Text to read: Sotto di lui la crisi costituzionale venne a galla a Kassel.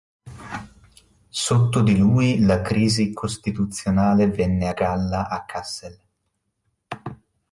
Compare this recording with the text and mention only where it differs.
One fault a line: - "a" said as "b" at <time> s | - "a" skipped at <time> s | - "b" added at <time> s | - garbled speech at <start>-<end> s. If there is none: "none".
none